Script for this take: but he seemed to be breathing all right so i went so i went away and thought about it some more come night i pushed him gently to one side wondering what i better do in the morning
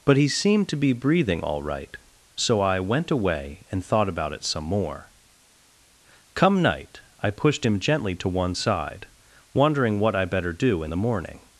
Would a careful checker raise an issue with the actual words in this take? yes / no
yes